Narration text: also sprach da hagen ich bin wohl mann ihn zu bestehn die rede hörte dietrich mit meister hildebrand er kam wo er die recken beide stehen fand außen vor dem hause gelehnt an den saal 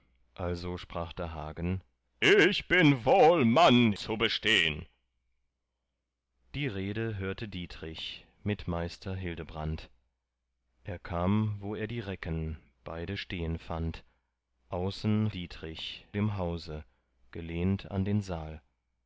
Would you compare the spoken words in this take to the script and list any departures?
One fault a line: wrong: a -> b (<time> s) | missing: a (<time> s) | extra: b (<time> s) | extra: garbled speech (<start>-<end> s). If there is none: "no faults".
missing: ihn (3.9 s)
wrong: vor -> dietrich (15.3 s)